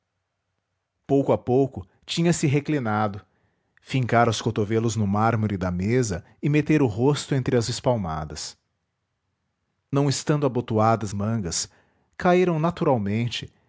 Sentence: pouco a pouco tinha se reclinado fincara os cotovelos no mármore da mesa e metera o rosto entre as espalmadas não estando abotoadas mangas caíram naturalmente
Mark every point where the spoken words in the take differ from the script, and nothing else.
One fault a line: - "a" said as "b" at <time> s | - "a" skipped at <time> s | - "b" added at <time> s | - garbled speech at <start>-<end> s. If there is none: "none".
none